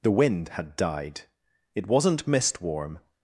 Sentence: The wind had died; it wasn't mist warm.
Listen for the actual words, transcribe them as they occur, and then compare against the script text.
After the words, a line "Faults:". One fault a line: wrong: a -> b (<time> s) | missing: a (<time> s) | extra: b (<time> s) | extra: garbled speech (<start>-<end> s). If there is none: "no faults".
The wind had died; it wasn't mist warm.
Faults:
no faults